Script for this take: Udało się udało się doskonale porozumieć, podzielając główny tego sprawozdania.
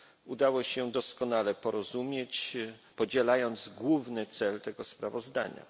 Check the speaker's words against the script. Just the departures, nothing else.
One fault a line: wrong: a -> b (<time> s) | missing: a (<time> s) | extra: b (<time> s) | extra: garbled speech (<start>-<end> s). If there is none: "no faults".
missing: udało się (0.9 s)
extra: cel (4.3 s)